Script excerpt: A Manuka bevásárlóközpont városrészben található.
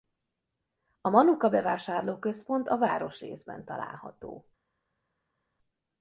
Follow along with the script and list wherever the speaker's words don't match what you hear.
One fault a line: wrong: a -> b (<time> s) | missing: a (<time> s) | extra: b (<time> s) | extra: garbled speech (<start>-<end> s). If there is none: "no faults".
extra: a (2.7 s)